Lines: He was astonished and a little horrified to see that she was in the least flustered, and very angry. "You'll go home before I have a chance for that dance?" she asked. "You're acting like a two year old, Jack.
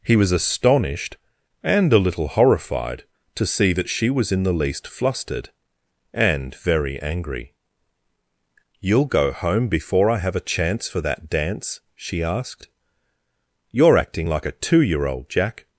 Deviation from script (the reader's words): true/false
false